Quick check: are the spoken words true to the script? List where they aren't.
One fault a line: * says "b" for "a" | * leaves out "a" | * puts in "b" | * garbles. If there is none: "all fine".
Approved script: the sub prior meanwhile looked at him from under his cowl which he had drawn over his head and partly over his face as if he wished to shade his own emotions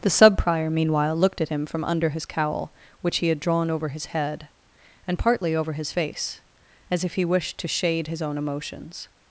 all fine